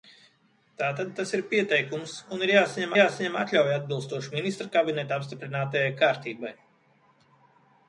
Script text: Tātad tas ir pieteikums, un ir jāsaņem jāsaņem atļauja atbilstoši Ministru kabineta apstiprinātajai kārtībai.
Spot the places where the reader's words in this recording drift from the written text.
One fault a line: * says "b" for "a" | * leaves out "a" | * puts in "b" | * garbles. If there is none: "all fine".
all fine